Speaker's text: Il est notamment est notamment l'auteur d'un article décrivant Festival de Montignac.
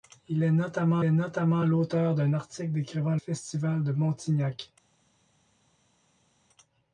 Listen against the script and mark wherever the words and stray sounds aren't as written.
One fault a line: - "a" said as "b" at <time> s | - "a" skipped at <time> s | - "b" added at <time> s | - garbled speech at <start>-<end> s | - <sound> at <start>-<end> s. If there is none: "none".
none